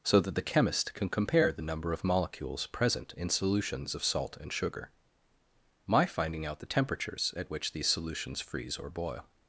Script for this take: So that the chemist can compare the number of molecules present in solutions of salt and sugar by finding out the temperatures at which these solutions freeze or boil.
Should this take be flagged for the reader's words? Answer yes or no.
yes